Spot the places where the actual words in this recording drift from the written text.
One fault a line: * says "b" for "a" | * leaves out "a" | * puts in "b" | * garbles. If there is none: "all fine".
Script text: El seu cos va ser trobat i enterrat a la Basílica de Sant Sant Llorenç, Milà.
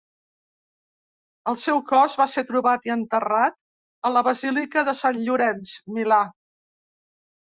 * leaves out "Sant"